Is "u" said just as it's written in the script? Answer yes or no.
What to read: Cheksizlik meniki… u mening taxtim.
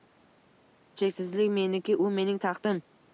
yes